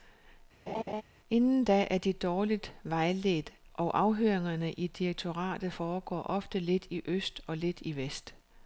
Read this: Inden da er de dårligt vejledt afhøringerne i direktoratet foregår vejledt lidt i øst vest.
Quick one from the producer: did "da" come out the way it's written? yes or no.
yes